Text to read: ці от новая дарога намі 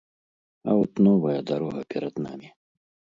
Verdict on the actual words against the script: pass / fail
fail